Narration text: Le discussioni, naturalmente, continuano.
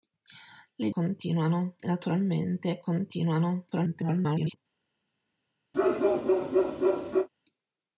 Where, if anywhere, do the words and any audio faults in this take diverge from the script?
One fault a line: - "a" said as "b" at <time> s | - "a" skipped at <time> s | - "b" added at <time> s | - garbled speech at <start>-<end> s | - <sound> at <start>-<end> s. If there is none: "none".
- "discussioni" said as "continuano" at 0.9 s
- garbled speech at 3.7-4.6 s
- bark at 5.7-7.3 s